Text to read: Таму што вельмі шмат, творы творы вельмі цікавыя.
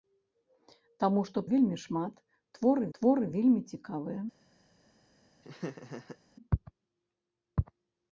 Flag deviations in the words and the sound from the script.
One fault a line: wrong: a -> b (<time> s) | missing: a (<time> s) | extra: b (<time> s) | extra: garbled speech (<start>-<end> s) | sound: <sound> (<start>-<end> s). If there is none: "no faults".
sound: laugh (5.4-6.2 s)